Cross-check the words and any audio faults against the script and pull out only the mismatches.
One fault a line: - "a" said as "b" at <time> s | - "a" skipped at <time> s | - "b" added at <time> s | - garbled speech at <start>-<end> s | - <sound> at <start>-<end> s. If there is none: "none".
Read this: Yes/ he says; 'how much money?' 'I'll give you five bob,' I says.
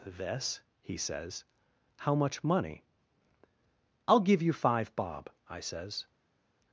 - "Yes" said as "This" at 0.1 s